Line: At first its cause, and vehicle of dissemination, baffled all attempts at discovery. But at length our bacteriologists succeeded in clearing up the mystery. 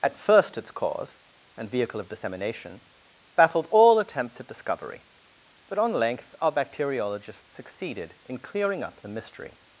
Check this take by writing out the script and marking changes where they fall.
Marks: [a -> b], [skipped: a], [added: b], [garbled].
At first its cause, and vehicle of dissemination, baffled all attempts at discovery. But [at -> on] length our bacteriologists succeeded in clearing up the mystery.